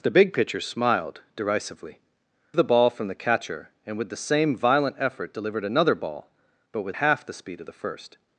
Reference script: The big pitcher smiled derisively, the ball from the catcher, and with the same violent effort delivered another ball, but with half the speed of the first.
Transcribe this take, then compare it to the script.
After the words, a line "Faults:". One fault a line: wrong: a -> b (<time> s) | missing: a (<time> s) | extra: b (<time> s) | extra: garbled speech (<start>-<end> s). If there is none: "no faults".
The big pitcher smiled derisively, the ball from the catcher, and with the same violent effort delivered another ball, but with half the speed of the first.
Faults:
no faults